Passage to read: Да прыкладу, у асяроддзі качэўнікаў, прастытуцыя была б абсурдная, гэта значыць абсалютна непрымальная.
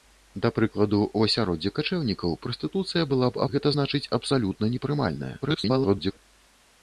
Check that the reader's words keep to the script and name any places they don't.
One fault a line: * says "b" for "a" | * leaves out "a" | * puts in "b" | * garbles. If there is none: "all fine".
* leaves out "абсурдная"
* garbles